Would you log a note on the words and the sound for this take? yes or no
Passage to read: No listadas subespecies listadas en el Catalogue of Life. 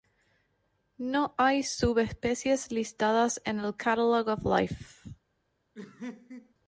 yes